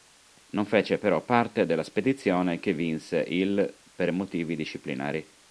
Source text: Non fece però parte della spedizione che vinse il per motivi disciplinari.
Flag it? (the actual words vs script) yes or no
no